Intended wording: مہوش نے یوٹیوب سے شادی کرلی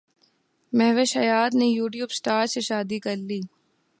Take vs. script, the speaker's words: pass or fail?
fail